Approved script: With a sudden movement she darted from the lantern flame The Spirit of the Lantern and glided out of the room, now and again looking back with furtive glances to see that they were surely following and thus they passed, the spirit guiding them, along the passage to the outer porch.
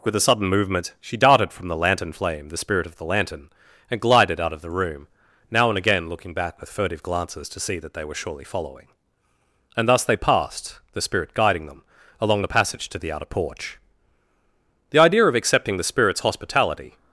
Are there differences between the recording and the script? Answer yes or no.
yes